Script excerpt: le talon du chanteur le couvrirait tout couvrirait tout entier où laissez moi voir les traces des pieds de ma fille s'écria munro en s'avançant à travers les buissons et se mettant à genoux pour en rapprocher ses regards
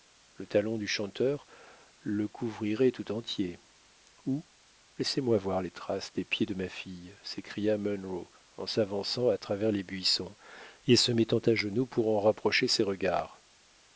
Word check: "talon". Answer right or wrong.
right